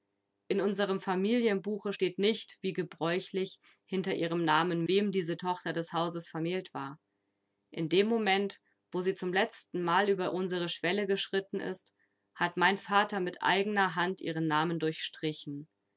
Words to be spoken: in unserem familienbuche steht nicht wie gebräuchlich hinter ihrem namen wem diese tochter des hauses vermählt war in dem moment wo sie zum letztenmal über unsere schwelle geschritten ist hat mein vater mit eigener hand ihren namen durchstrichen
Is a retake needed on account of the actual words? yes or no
no